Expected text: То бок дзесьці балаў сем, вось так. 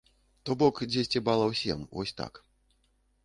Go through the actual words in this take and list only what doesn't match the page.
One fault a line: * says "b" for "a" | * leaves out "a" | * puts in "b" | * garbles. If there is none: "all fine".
all fine